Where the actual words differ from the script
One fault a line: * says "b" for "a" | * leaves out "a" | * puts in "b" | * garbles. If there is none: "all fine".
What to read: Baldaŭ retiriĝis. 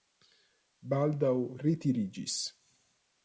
all fine